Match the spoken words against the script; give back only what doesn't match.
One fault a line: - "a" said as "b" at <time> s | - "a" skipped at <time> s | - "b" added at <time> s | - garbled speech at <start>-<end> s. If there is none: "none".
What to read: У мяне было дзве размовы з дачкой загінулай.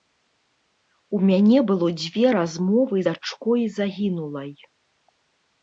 - "з" skipped at 3.0 s